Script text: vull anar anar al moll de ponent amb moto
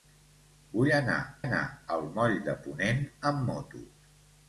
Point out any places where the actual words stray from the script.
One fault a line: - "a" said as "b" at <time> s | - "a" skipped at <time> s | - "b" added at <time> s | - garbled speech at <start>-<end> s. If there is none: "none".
none